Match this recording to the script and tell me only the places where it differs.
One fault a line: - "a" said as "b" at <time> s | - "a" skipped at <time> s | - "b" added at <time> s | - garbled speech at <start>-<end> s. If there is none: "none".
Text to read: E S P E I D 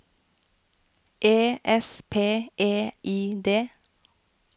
none